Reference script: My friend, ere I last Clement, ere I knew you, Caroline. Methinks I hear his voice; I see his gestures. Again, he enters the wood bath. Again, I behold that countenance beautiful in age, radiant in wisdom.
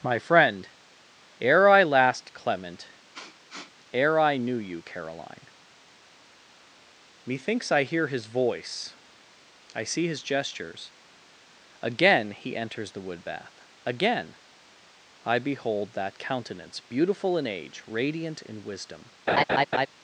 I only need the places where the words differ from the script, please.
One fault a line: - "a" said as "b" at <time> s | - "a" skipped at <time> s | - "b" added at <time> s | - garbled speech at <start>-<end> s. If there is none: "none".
none